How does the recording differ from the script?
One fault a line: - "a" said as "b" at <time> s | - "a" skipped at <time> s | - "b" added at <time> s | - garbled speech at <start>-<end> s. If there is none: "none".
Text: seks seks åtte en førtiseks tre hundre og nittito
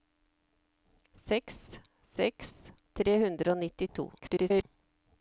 - "åtte en førtiseks" skipped at 2.5 s
- garbled speech at 4.2-4.6 s